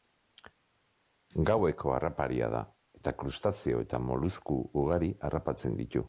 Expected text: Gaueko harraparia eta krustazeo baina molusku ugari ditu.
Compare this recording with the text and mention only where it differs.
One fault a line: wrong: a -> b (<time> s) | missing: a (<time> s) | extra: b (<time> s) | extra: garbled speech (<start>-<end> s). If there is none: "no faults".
extra: da (2.5 s)
wrong: baina -> eta (3.8 s)
extra: harrapatzen (5.2 s)